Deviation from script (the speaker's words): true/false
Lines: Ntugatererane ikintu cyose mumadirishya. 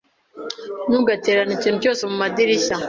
false